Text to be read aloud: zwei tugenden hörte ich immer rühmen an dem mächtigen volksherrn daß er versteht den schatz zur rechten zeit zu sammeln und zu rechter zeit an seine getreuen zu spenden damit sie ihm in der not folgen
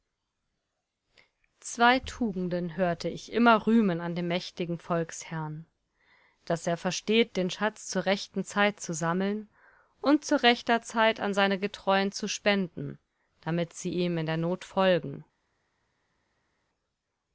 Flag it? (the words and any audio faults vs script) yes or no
no